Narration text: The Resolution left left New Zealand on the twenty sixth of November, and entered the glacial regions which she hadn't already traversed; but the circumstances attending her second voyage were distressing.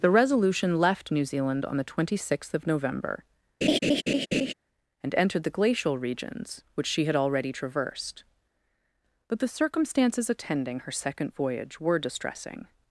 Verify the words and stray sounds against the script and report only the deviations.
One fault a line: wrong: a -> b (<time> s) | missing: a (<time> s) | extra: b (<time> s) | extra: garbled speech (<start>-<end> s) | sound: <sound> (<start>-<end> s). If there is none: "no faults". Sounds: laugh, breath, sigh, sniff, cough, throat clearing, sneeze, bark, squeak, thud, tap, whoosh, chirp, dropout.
missing: left (1.1 s)
sound: laugh (3.6-4.5 s)
wrong: hadn't -> had (7.0 s)